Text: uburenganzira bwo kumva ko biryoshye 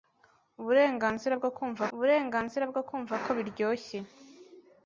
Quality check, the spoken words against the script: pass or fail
fail